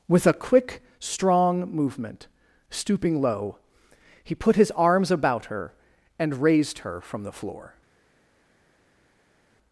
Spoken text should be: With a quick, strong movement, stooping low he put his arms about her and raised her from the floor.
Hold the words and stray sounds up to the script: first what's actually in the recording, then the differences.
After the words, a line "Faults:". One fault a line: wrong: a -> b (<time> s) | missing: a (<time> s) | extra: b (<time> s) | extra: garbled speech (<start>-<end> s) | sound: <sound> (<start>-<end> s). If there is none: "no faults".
With a quick, strong movement, stooping low he put his arms about her and raised her from the floor.
Faults:
no faults